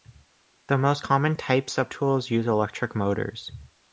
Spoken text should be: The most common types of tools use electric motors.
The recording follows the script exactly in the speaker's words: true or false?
true